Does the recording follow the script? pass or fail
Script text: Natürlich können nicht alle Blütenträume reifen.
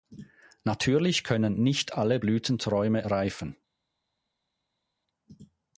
pass